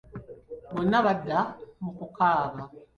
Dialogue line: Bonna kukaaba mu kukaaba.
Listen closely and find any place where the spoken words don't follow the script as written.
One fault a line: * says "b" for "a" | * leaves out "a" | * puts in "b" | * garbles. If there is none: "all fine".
* says "badda" for "kukaaba"